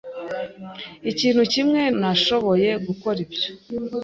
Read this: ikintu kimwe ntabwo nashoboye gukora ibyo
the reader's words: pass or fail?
fail